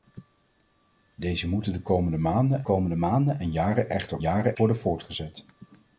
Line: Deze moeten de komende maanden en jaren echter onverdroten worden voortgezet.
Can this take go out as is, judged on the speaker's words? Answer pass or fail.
fail